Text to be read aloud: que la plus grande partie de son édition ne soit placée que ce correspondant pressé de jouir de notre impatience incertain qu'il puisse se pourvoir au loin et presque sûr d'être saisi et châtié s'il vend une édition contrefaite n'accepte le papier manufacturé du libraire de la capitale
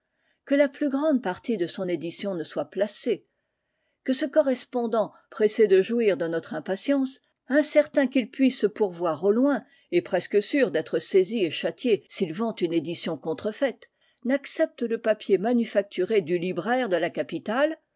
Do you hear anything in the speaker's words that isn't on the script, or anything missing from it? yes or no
no